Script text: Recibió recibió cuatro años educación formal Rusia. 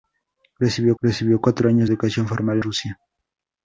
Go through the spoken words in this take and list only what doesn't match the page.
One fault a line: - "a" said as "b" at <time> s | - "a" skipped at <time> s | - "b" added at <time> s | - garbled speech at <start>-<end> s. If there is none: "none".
none